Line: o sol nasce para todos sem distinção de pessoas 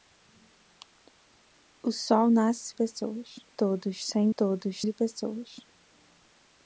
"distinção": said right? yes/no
no